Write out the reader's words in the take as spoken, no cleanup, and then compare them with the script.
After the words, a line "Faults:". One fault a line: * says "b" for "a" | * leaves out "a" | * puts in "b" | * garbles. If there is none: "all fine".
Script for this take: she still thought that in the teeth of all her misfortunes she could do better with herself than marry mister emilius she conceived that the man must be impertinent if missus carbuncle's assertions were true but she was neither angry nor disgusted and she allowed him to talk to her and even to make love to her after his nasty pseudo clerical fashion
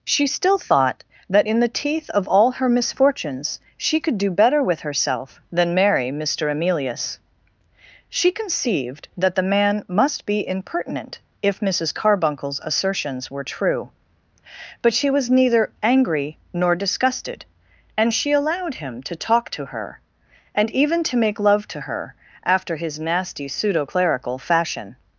she still thought that in the teeth of all her misfortunes she could do better with herself than marry mister emilius she conceived that the man must be impertinent if missus carbuncle's assertions were true but she was neither angry nor disgusted and she allowed him to talk to her and even to make love to her after his nasty pseudo clerical fashion
Faults:
all fine